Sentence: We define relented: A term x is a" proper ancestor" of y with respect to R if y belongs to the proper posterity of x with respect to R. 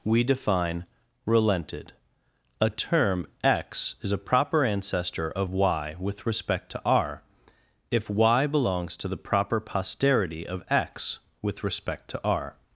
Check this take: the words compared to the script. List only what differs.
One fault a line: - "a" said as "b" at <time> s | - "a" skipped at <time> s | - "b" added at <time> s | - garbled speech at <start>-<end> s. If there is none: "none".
none